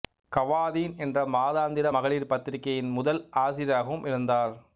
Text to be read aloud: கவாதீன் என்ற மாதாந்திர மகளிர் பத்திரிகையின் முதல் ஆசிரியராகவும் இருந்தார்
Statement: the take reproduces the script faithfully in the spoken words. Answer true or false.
true